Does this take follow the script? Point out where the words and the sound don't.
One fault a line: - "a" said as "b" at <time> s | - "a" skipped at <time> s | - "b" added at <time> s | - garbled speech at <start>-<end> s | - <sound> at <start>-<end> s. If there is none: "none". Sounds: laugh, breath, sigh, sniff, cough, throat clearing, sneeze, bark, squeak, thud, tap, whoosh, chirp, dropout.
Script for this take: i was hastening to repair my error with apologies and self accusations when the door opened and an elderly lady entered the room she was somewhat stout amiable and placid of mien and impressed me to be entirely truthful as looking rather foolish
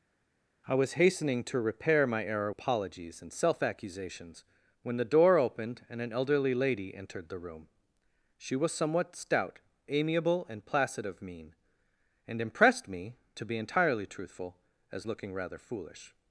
- "with" skipped at 2.5 s